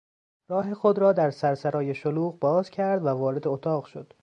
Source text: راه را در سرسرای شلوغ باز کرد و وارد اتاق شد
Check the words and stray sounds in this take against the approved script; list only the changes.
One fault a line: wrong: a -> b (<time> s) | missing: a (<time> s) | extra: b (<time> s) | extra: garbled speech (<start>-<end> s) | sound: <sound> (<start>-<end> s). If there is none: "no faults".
extra: خود (0.7 s)